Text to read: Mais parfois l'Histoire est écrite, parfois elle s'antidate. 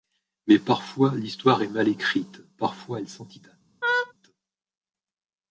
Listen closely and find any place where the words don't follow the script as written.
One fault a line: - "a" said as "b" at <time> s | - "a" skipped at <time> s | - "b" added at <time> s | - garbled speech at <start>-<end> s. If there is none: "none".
- "mal" added at 1.7 s